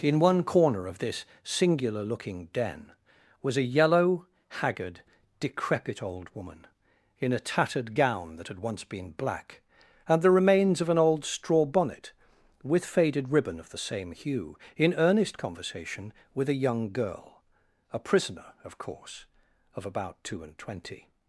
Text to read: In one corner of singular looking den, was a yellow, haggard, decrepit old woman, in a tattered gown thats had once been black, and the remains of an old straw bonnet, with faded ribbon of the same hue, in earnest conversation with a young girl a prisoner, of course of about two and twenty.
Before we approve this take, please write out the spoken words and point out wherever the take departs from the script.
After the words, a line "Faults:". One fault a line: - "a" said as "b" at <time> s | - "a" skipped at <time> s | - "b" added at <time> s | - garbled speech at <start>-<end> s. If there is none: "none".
In one corner of this singular looking den, was a yellow, haggard, decrepit old woman, in a tattered gown that had once been black, and the remains of an old straw bonnet, with faded ribbon of the same hue, in earnest conversation with a young girl a prisoner, of course of about two and twenty.
Faults:
- "this" added at 1.0 s
- "thats" said as "that" at 8.4 s